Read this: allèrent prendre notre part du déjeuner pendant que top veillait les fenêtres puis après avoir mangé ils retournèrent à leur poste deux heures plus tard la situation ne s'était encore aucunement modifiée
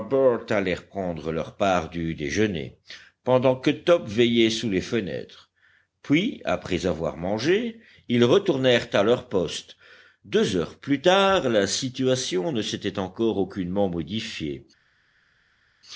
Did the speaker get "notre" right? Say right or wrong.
wrong